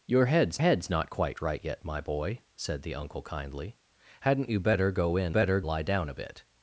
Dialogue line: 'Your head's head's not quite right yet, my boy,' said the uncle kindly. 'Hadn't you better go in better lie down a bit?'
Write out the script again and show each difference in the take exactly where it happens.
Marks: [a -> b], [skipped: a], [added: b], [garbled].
'Your head's head's not quite right yet, my boy,' said the uncle kindly. 'Hadn't you better go in better lie down a bit?'